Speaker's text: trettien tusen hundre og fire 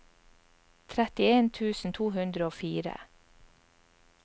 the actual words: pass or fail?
fail